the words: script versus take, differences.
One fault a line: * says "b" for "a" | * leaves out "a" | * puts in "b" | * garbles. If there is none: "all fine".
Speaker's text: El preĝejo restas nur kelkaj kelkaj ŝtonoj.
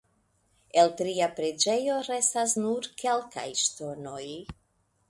* puts in "tria"
* leaves out "kelkaj"